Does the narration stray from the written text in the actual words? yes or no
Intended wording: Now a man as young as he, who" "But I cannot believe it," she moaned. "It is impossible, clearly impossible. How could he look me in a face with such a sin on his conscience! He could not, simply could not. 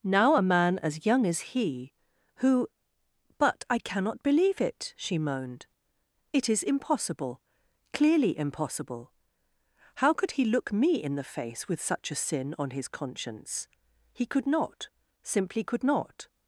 yes